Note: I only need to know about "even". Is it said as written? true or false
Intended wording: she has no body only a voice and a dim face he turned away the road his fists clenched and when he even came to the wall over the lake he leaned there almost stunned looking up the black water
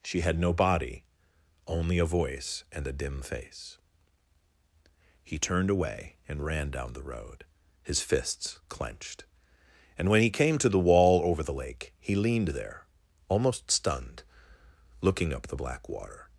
false